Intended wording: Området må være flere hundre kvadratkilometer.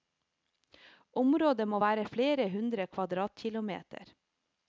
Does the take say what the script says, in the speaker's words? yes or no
yes